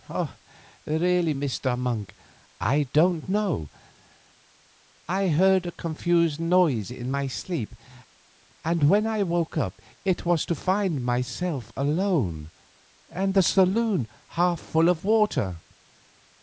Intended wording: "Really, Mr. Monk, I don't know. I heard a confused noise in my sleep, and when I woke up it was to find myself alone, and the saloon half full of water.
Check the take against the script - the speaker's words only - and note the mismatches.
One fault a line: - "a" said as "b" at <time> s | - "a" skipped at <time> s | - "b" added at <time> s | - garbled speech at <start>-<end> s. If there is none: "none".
none